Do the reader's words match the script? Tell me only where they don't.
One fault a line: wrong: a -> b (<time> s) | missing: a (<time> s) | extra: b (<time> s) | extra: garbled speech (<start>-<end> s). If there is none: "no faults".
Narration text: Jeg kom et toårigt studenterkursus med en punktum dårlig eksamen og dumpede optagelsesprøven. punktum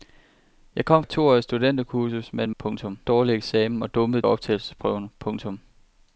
no faults